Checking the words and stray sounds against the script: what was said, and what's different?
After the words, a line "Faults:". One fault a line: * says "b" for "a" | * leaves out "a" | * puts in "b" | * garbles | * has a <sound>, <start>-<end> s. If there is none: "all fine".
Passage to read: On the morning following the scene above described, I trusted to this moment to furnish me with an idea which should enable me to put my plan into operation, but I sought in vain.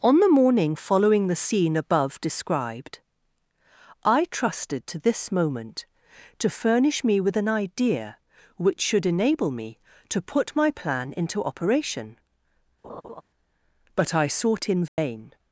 On the morning following the scene above described, I trusted to this moment to furnish me with an idea which should enable me to put my plan into operation, but I sought in vain.
Faults:
* has a laugh, 12.8-13.2 s
* has a dropout, 14.9-15.0 s